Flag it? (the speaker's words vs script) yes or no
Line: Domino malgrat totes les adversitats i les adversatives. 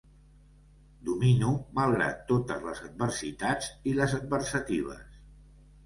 no